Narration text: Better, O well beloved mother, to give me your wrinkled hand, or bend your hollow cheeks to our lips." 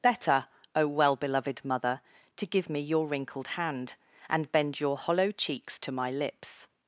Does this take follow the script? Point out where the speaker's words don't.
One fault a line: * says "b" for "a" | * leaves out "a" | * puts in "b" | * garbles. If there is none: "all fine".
* says "and" for "or"
* says "my" for "our"